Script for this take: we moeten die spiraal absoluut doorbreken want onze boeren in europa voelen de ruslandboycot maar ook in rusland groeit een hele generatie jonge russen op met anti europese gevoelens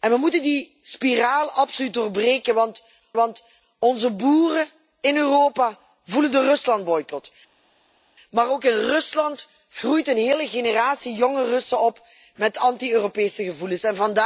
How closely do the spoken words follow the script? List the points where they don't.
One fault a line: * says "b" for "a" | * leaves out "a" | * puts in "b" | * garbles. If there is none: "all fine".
* puts in "want"